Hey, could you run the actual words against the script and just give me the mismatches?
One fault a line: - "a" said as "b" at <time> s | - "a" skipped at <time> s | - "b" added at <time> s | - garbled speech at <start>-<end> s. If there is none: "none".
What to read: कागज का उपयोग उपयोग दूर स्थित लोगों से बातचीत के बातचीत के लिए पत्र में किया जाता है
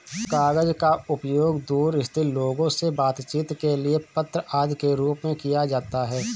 - "उपयोग" skipped at 1.6 s
- "बातचीत" said as "लिए पत्र आदि" at 3.8 s
- "लिए पत्र" said as "रूप" at 5.0 s